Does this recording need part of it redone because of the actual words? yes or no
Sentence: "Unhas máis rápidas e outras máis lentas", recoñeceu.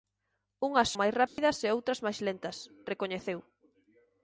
no